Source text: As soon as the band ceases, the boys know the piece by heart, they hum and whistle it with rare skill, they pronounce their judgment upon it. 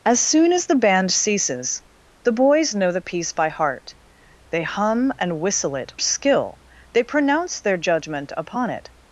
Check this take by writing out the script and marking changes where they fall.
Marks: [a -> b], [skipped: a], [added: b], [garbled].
As soon as the band ceases, the boys know the piece by heart, they hum and whistle it [skipped: with rare] skill, they pronounce their judgment upon it.